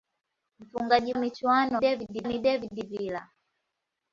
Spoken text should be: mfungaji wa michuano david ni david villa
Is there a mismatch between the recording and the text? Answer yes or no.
no